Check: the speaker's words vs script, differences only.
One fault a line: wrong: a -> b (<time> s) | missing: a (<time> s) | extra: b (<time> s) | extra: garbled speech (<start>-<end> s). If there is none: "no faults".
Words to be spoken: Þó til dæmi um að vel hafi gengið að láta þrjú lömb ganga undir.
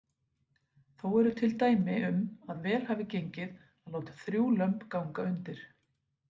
extra: eru (1.2 s)